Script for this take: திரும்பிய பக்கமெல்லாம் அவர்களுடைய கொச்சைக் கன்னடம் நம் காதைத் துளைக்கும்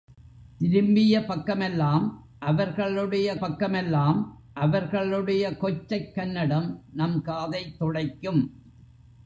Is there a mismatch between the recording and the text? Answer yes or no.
yes